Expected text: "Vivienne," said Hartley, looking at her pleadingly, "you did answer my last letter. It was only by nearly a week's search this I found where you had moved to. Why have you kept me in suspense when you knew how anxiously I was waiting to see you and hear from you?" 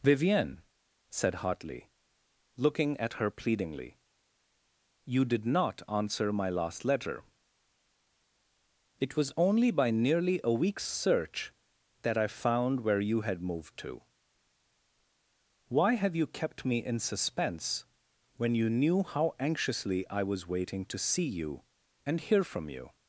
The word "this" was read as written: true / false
false